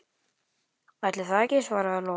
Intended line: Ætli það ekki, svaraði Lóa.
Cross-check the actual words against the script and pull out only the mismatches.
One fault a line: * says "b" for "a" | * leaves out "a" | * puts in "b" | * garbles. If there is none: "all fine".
all fine